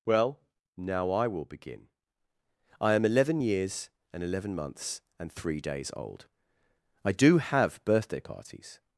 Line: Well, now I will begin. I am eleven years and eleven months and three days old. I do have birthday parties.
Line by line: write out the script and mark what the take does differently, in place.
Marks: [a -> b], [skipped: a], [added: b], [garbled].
Well, now I will begin. I am eleven years and eleven months and three days old. I do have birthday parties.